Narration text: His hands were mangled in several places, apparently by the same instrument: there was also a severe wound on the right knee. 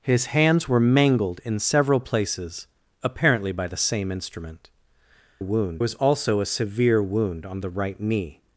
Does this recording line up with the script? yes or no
no